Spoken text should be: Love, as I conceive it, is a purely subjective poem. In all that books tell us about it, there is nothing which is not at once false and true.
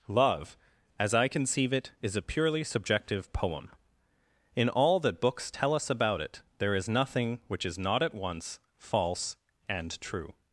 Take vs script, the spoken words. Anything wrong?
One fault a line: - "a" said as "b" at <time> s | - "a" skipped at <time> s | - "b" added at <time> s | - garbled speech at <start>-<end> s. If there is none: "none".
none